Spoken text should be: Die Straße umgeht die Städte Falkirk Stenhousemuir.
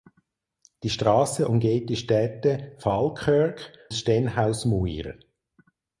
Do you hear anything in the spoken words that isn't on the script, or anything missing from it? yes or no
no